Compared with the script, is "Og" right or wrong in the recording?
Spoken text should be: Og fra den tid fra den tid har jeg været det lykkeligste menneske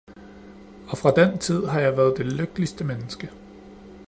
right